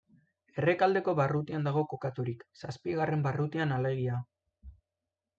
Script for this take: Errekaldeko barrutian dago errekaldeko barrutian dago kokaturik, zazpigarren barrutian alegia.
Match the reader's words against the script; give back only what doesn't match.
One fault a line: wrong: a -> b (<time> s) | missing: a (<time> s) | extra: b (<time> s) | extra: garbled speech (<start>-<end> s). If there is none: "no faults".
missing: errekaldeko barrutian dago (1.8 s)